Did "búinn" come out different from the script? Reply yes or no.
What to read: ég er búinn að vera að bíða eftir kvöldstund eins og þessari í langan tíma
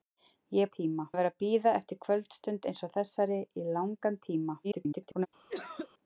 yes